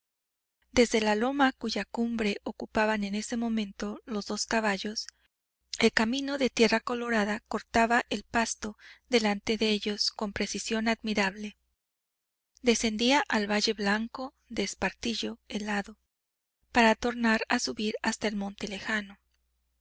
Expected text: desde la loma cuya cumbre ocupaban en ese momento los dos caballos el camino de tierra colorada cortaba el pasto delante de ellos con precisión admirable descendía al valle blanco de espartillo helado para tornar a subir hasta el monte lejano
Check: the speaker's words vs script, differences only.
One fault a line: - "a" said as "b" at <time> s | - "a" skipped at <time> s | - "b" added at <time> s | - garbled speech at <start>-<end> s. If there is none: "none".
none